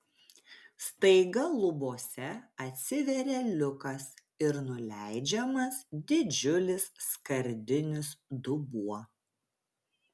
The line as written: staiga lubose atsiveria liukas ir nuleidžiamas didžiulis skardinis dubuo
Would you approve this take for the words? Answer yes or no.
yes